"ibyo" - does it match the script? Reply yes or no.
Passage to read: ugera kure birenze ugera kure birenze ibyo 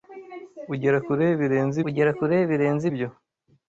yes